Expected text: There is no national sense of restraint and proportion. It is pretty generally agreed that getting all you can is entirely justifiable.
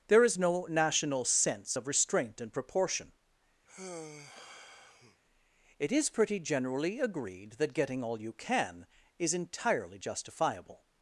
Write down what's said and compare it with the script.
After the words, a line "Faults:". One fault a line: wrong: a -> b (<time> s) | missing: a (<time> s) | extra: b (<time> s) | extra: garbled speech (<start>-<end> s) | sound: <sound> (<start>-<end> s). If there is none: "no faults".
There is no national sense of restraint and proportion. It is pretty generally agreed that getting all you can is entirely justifiable.
Faults:
sound: sigh (3.7-5.2 s)